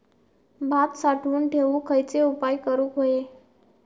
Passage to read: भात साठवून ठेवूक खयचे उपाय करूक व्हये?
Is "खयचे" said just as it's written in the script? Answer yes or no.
yes